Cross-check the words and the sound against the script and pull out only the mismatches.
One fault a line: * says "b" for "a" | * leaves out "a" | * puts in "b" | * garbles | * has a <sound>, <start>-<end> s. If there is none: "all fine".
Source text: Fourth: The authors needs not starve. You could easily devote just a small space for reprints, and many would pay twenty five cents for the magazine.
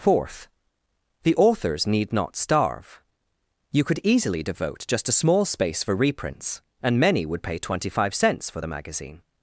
* says "need" for "needs"